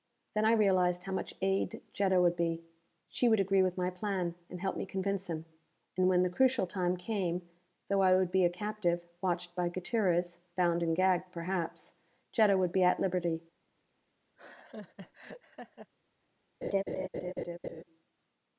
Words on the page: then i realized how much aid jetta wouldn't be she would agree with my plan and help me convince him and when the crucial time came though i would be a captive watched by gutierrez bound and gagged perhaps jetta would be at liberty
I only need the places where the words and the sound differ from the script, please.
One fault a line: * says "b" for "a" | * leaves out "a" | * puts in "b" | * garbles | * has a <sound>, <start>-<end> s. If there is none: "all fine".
* says "would" for "wouldn't"
* has a laugh, 14.4-15.9 s
* has a laugh, 16.6-17.8 s